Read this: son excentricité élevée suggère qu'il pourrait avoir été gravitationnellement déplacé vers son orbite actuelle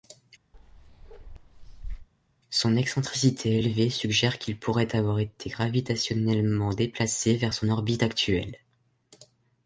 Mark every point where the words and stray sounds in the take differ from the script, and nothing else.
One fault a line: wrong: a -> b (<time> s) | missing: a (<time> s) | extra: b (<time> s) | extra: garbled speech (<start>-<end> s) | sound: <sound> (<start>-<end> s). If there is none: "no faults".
sound: bark (0.5-2.1 s)